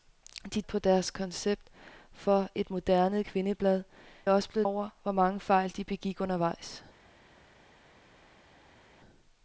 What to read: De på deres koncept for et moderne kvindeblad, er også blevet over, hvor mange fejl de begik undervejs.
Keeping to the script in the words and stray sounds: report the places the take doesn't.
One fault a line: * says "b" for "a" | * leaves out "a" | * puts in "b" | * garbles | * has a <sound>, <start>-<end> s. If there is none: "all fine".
all fine